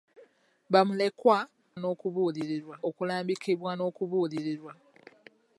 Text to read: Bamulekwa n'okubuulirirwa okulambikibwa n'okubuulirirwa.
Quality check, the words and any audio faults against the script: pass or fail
pass